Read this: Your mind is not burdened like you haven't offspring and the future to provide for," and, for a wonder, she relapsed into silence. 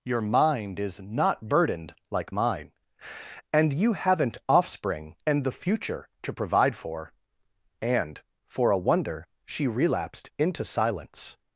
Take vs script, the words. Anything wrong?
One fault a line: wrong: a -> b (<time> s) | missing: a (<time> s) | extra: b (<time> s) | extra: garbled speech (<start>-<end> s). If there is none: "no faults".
extra: mine and (2.3 s)